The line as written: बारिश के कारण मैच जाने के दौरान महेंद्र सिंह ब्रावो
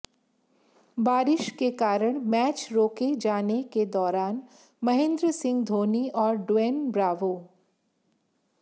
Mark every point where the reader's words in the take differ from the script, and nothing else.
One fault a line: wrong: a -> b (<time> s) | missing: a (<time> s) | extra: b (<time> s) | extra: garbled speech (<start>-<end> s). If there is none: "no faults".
extra: रोके (2.7 s)
extra: धोनी और ड्वेन (5.6 s)